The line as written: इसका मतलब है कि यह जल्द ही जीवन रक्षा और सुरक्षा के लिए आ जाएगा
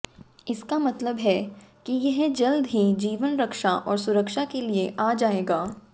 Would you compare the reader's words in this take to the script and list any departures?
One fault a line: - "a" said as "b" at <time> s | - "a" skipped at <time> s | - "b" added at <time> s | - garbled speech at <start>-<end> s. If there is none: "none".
none